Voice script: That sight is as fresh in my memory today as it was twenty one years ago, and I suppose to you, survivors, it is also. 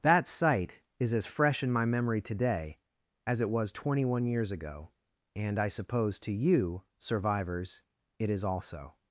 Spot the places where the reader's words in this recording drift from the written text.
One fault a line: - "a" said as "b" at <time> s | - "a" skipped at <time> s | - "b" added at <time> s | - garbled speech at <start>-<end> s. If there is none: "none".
none